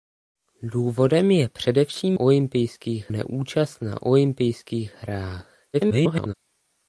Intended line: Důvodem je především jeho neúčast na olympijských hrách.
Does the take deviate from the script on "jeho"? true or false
true